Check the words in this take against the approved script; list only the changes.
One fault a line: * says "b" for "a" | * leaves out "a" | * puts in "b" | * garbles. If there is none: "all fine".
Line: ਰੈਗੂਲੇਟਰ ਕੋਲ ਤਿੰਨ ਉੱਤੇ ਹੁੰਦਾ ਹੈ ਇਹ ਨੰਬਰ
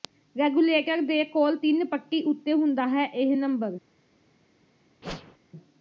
* puts in "ਦੇ"
* puts in "ਪੱਟੀ"